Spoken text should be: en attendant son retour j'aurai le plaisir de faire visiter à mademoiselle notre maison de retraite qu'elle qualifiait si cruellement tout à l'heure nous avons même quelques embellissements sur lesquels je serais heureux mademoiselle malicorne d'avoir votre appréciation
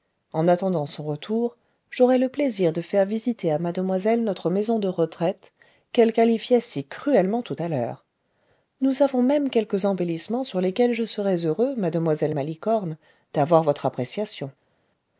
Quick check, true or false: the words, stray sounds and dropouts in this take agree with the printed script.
true